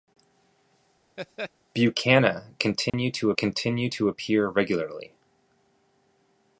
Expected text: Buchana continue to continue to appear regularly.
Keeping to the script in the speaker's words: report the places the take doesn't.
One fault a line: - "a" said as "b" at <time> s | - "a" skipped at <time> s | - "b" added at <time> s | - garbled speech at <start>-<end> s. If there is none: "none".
none